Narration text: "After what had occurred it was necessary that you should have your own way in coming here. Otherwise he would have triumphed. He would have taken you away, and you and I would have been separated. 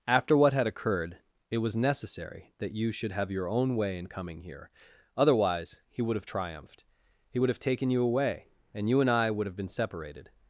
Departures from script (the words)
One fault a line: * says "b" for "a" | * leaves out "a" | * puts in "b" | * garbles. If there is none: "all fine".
all fine